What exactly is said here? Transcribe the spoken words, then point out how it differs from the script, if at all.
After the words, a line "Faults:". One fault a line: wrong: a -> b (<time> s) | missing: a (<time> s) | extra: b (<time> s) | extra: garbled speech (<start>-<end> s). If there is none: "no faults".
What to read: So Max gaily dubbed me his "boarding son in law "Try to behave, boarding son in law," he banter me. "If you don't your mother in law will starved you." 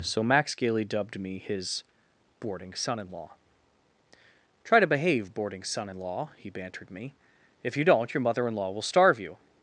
So Max gaily dubbed me his "boarding son in law "Try to behave, boarding son in law," he bantered me. "If you don't your mother in law will starve you."
Faults:
wrong: banter -> bantered (6.5 s)
wrong: starved -> starve (8.8 s)